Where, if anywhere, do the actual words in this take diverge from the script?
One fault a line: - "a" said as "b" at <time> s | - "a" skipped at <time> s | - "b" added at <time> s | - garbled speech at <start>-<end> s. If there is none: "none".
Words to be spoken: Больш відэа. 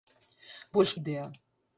none